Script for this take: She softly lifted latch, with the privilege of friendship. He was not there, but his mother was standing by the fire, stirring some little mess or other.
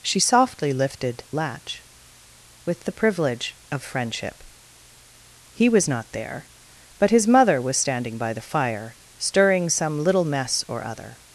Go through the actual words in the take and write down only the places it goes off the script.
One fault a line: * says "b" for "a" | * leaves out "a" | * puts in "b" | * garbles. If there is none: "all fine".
all fine